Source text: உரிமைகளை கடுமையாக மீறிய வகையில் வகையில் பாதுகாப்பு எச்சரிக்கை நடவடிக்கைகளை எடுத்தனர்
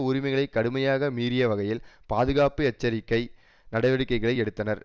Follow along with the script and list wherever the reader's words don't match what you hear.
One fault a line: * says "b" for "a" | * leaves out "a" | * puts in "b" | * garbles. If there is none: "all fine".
* leaves out "வகையில்"